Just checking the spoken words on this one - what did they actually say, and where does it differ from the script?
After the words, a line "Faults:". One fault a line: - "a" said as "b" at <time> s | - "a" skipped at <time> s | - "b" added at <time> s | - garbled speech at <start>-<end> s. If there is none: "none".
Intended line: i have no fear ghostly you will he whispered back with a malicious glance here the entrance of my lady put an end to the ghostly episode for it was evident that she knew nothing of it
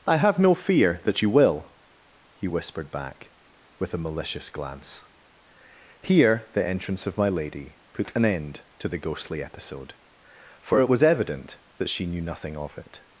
i have no fear that you will he whispered back with a malicious glance here the entrance of my lady put an end to the ghostly episode for it was evident that she knew nothing of it
Faults:
- "ghostly" said as "that" at 1.0 s